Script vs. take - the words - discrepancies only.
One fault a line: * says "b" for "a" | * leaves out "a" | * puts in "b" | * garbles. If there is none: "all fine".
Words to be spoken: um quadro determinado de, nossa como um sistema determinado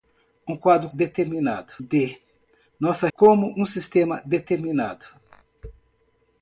all fine